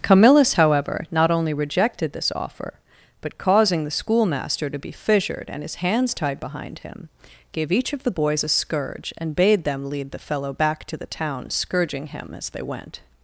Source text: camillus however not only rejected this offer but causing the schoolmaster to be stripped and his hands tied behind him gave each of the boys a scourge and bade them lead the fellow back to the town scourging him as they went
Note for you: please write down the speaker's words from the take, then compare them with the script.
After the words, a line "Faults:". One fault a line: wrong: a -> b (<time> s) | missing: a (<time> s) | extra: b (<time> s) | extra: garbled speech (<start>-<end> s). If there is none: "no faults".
camillus however not only rejected this offer but causing the schoolmaster to be fissured and his hands tied behind him gave each of the boys a scourge and bade them lead the fellow back to the town scourging him as they went
Faults:
wrong: stripped -> fissured (4.9 s)